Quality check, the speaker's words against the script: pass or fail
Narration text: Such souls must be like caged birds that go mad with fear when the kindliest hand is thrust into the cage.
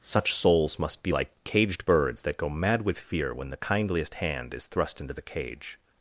pass